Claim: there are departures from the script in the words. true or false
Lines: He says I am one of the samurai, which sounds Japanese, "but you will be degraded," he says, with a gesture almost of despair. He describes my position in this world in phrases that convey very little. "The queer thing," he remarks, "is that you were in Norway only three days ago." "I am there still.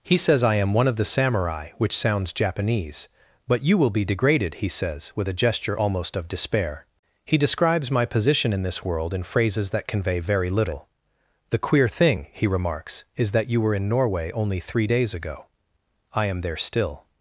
false